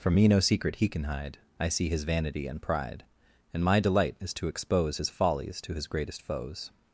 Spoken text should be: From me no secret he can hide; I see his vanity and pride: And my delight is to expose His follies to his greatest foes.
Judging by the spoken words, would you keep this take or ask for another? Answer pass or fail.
pass